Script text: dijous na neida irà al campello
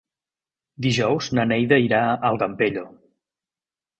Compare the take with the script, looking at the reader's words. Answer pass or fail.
pass